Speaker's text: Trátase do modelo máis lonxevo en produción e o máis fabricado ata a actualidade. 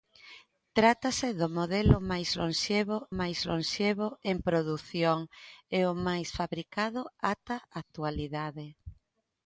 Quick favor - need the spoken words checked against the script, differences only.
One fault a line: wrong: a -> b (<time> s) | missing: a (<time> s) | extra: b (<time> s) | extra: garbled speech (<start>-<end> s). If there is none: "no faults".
extra: máis lonxevo (3.2 s)